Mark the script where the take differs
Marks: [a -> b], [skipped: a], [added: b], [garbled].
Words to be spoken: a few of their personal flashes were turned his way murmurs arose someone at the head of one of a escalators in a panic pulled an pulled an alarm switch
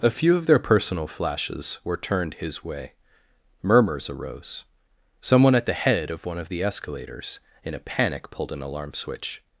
a few of their personal flashes were turned his way murmurs arose someone at the head of one of [a -> the] escalators in a panic pulled an [skipped: pulled an] alarm switch